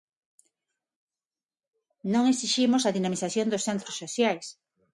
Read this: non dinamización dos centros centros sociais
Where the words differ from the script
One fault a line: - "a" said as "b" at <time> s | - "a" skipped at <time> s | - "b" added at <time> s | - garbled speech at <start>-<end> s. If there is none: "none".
- "exiximos a" added at 2.3 s
- "centros" skipped at 4.0 s